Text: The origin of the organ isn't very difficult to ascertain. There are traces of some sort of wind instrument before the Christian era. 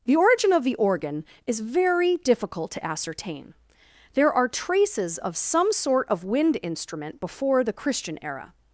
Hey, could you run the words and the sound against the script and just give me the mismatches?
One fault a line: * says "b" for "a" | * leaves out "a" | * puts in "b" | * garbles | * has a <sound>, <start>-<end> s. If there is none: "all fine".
* says "is" for "isn't"